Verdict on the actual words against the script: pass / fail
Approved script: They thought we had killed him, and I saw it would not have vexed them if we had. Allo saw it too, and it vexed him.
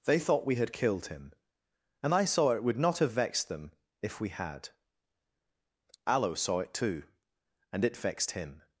pass